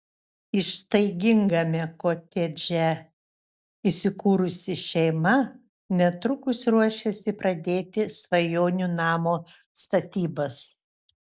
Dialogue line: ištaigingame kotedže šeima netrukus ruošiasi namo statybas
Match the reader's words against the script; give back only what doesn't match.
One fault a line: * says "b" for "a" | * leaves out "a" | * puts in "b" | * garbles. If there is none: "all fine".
* puts in "įsikūrusi"
* puts in "pradėti svajonių"